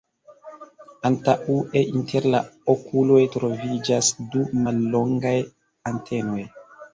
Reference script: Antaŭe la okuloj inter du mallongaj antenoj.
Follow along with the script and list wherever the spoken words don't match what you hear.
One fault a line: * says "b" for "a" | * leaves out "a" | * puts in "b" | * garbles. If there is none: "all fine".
* puts in "inter"
* says "troviĝas" for "inter"